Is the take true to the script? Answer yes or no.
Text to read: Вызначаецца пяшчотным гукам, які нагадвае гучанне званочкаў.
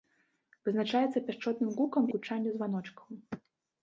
no